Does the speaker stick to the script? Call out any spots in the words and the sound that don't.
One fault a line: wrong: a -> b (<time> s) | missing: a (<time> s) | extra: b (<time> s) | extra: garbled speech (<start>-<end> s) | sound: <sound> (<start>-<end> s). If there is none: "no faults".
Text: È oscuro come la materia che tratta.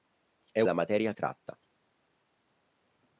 missing: oscuro come (0.6 s)
missing: che (1.1 s)